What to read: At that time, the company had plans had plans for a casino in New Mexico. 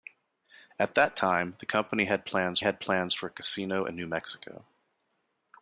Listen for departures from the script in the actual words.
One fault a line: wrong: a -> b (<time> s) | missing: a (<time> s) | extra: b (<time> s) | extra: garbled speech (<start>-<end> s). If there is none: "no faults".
no faults